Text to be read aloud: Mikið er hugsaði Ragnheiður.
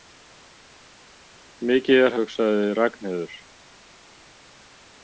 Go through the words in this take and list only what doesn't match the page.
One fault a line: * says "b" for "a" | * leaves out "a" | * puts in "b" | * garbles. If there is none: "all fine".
all fine